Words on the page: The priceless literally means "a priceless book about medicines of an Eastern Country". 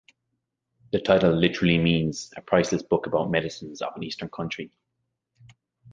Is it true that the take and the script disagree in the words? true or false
true